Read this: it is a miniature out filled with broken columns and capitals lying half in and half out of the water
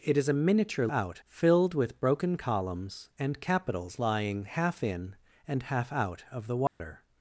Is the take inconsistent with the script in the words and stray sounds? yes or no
yes